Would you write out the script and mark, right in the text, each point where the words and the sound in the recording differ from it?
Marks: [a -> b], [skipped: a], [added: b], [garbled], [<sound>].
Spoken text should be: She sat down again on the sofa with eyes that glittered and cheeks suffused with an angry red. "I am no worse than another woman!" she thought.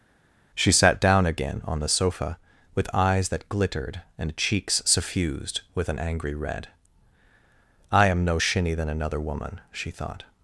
She sat down again on the sofa with eyes that glittered and cheeks suffused with an angry red. "I am no [worse -> shinny] than another woman!" she thought.